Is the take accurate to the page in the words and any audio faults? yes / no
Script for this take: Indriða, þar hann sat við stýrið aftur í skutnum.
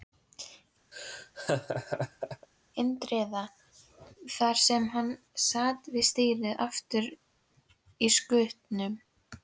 no